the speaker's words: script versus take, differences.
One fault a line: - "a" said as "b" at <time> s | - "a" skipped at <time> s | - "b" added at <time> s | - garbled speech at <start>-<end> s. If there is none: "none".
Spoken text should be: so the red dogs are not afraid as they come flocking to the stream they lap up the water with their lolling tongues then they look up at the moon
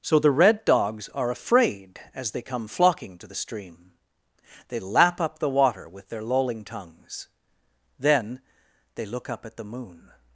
- "not" skipped at 1.3 s